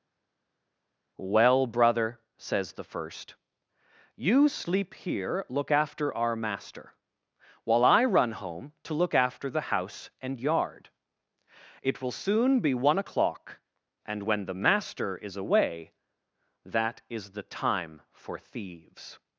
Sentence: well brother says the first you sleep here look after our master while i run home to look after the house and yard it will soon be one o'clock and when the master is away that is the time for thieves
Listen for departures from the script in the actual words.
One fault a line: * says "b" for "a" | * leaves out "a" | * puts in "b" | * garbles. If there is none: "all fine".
all fine